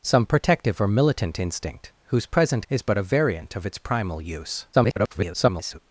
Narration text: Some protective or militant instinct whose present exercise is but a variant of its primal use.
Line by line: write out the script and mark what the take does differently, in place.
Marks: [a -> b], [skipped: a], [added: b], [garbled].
Some protective or militant instinct whose present [skipped: exercise] is but a variant of its primal use. [garbled]